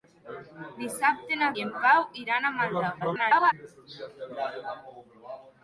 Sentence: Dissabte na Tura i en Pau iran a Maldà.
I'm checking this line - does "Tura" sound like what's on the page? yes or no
no